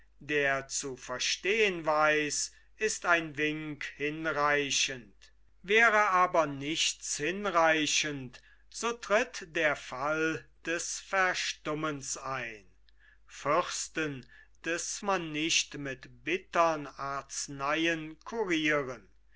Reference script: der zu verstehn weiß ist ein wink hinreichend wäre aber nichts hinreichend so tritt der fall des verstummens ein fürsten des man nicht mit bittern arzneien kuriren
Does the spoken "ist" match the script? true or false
true